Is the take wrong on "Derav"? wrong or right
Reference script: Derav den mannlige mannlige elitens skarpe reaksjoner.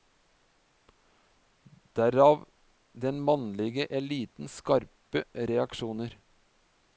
right